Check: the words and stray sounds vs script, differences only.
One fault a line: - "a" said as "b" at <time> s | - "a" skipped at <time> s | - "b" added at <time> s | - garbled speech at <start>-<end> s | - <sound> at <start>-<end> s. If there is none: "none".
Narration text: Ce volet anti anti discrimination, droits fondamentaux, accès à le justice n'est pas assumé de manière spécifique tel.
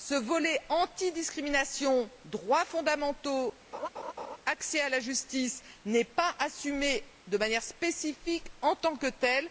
- "anti" skipped at 1.1 s
- laugh at 3.7-4.4 s
- "le" said as "la" at 4.9 s
- "en tant que" added at 8.6 s